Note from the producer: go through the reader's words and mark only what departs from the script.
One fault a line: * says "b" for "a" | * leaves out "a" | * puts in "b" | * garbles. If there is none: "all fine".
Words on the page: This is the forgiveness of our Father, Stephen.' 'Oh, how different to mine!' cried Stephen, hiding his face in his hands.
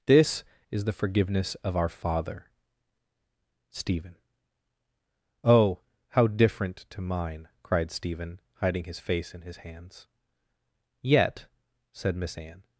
* puts in "Yet said Miss Anne"